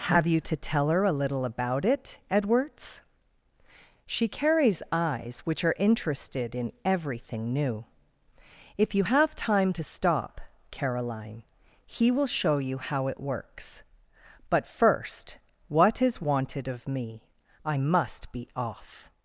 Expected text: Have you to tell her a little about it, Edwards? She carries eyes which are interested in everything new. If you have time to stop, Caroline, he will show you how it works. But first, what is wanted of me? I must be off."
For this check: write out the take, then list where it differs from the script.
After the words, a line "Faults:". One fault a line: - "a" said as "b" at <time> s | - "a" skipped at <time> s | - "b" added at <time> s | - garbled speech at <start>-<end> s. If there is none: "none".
Have you to tell her a little about it, Edwards? She carries eyes which are interested in everything new. If you have time to stop, Caroline, he will show you how it works. But first, what is wanted of me? I must be off."
Faults:
none